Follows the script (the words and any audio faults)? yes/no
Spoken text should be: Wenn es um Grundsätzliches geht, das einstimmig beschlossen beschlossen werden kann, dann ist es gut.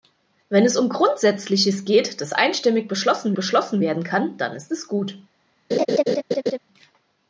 no